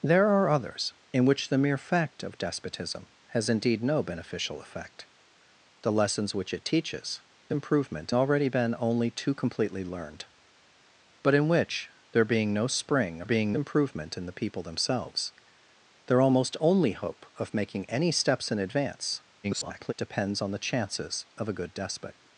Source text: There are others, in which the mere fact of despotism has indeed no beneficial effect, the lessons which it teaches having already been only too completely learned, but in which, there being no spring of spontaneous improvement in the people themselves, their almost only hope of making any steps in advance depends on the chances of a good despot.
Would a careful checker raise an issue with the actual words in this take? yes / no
yes